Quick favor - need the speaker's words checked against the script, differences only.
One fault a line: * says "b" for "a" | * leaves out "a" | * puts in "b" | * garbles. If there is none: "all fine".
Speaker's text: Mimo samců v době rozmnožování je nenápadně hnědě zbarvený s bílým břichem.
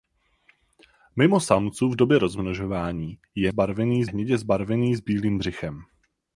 * says "zbarvený" for "nenápadně"